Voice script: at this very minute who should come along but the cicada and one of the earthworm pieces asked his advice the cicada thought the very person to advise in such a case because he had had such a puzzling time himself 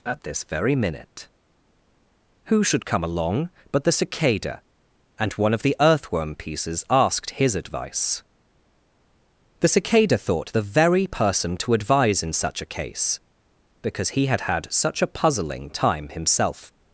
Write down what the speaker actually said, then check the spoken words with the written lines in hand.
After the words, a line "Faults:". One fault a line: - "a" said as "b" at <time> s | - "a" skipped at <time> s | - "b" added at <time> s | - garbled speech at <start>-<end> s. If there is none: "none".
at this very minute who should come along but the cicada and one of the earthworm pieces asked his advice the cicada thought the very person to advise in such a case because he had had such a puzzling time himself
Faults:
none